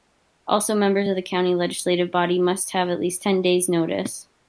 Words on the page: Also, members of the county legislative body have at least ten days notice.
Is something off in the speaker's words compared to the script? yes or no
yes